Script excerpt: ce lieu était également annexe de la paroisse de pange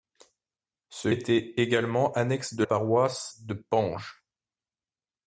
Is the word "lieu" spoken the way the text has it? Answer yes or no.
no